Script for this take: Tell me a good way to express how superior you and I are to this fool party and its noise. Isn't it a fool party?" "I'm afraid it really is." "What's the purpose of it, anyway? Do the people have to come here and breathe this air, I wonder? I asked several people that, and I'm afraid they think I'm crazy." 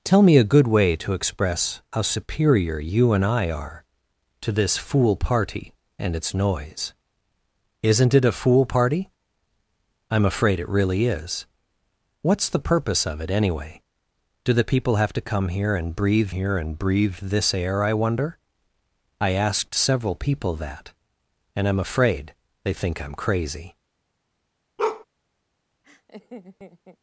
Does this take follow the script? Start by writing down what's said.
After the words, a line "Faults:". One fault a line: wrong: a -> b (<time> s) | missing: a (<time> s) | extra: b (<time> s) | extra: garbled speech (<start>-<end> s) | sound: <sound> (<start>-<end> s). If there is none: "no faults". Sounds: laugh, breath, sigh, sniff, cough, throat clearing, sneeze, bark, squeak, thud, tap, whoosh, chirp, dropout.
Tell me a good way to express how superior you and I are to this fool party and its noise. Isn't it a fool party?" "I'm afraid it really is." "What's the purpose of it, anyway? Do the people have to come here and breathe here and breathe this air, I wonder? I asked several people that, and I'm afraid they think I'm crazy."
Faults:
extra: here and breathe (16.3 s)
sound: bark (24.8-25.0 s)
sound: laugh (25.8-27.0 s)